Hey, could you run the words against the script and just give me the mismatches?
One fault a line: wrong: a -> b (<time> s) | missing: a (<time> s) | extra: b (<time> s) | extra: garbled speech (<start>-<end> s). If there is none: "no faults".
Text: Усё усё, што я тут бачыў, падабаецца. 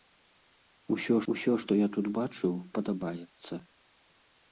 no faults